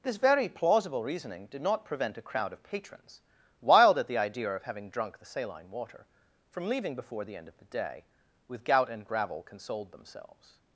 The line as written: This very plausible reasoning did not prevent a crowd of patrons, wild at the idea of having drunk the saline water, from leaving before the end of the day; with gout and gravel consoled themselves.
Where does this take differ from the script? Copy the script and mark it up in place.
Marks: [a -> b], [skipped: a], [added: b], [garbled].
This very plausible reasoning did not prevent a crowd of patrons, wild at the idea of having drunk the saline water, from leaving before the end of the day; with gout and gravel consoled themselves.